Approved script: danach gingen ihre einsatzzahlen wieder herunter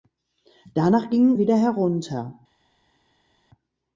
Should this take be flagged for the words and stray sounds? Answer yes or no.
yes